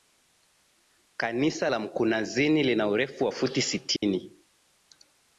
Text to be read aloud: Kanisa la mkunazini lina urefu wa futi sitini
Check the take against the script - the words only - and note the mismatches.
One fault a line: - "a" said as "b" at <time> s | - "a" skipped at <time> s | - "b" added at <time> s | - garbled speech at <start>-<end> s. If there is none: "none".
none